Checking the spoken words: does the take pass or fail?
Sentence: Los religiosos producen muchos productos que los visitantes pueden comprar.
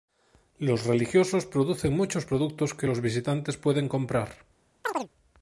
pass